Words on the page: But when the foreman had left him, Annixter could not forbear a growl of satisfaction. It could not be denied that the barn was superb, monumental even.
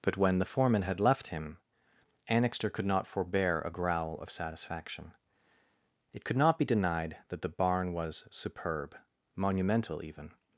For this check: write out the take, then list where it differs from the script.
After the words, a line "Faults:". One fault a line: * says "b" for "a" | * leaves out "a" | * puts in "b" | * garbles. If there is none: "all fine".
But when the foreman had left him, Annixter could not forbear a growl of satisfaction. It could not be denied that the barn was superb, monumental even.
Faults:
all fine